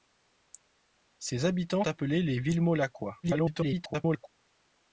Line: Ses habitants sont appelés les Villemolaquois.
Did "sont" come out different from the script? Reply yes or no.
yes